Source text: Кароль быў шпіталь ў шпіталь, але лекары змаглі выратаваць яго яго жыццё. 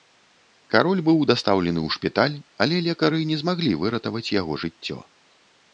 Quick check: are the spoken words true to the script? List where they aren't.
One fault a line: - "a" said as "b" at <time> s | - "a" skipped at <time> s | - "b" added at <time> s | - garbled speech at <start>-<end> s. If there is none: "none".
- "шпіталь" said as "дастаўлены" at 1.3 s
- "не" added at 3.3 s
- "яго" skipped at 4.5 s